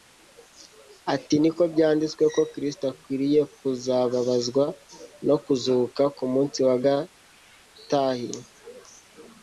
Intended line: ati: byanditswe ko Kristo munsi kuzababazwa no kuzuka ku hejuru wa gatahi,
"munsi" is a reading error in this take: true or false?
true